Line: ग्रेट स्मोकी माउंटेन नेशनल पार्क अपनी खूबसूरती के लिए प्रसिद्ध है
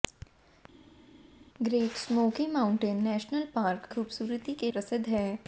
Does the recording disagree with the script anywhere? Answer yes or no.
yes